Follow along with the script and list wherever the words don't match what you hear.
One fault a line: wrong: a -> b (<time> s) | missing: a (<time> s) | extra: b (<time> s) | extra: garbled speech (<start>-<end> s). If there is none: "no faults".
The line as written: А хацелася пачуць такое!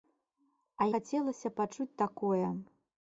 no faults